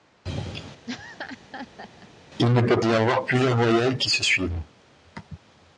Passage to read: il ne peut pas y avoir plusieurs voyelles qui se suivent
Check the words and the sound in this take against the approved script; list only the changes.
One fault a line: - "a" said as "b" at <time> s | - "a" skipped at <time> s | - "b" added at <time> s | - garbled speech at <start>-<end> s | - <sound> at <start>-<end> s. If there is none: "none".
- laugh at 0.9-2.1 s
- "pas" skipped at 2.8 s